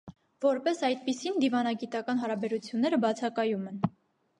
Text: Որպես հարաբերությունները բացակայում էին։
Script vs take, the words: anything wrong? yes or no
yes